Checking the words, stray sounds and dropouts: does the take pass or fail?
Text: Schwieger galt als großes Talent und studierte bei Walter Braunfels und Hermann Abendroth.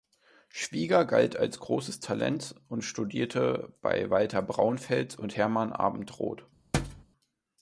fail